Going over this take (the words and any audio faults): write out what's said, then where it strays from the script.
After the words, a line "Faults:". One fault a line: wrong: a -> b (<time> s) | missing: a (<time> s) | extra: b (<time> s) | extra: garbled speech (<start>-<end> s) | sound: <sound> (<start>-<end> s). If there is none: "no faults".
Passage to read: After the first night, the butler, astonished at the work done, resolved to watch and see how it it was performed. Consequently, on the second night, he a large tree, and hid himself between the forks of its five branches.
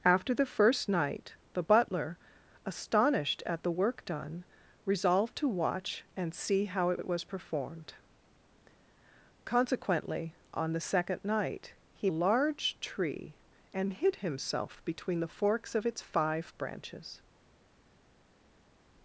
After the first night, the butler, astonished at the work done, resolved to watch and see how it it was performed. Consequently, on the second night, he a large tree, and hid himself between the forks of its five branches.
Faults:
no faults